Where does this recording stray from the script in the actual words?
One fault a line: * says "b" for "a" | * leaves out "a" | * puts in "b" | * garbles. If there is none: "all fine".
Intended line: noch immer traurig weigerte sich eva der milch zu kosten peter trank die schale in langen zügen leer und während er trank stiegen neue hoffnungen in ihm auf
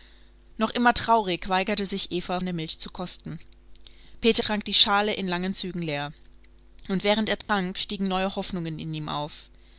all fine